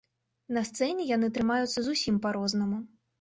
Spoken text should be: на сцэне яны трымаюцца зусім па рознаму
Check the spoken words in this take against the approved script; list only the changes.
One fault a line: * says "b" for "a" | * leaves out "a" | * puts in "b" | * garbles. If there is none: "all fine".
all fine